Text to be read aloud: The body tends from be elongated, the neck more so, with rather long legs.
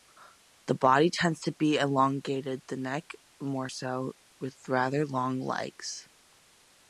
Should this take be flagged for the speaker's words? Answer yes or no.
yes